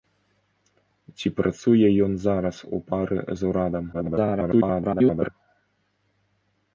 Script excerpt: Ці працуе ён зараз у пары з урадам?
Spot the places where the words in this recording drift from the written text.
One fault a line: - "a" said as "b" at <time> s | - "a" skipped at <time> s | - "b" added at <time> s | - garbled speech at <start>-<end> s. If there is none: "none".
- garbled speech at 3.9-5.3 s